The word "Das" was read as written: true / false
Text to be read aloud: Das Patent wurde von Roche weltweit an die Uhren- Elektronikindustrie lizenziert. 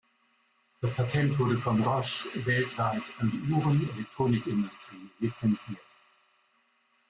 true